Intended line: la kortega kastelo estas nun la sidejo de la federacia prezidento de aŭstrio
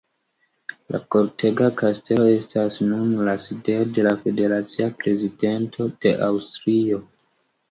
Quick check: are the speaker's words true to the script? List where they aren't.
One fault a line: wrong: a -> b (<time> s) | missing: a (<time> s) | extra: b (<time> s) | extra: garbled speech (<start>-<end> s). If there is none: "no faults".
no faults